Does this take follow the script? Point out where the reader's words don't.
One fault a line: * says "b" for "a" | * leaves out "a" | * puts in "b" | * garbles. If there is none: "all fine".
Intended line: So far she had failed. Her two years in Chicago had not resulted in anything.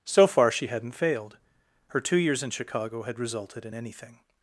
* says "hadn't" for "had"
* leaves out "not"